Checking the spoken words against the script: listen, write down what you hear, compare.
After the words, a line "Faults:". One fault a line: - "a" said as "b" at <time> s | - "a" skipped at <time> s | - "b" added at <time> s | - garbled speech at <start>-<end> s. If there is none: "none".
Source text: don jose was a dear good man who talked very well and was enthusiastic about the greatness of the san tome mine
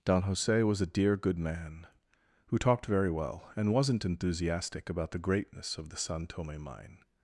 don jose was a dear good man who talked very well and wasn't enthusiastic about the greatness of the san tome mine
Faults:
- "was" said as "wasn't" at 3.7 s